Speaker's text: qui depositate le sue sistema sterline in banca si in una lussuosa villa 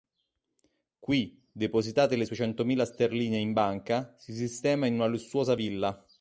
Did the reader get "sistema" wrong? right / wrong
wrong